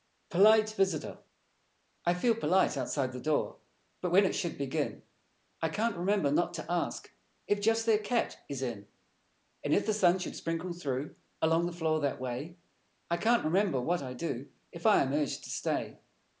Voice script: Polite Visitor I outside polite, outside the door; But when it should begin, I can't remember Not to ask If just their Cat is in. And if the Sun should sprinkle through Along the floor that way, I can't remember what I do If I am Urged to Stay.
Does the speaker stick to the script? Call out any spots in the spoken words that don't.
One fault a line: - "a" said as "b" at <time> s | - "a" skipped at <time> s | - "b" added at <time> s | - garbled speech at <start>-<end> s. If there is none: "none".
- "outside" said as "feel" at 2.1 s